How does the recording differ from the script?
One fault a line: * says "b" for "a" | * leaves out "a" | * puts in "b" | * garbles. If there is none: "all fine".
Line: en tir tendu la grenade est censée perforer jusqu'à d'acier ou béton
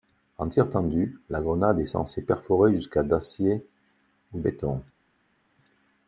all fine